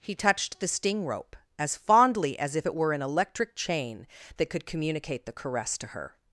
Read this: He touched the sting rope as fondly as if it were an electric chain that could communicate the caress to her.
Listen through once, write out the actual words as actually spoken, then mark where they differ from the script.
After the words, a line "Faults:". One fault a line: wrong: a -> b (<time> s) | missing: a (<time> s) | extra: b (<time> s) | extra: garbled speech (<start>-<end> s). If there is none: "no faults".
He touched the sting rope as fondly as if it were an electric chain that could communicate the caress to her.
Faults:
no faults